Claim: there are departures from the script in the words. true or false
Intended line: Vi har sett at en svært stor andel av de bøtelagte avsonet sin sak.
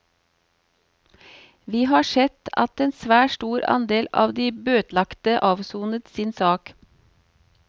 false